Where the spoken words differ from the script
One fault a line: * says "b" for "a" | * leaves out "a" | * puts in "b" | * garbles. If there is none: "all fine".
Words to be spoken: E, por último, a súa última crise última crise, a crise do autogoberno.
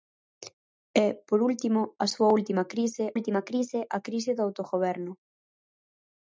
all fine